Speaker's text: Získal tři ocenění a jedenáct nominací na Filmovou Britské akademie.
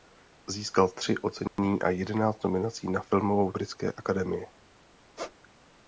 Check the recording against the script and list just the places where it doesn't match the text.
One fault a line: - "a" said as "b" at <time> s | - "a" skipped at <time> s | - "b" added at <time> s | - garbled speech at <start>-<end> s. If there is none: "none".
none